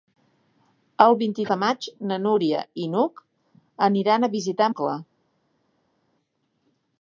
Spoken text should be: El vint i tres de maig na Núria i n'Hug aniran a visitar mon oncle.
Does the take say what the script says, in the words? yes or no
no